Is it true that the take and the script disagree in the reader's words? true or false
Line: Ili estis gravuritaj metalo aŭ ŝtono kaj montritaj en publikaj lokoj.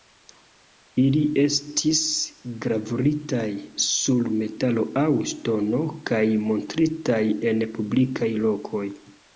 true